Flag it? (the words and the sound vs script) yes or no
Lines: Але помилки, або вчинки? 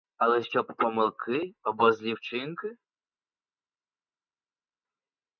yes